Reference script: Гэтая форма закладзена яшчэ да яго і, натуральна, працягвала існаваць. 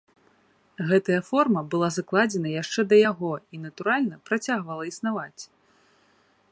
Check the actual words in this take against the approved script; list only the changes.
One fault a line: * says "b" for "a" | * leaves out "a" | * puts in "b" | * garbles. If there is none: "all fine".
* puts in "была"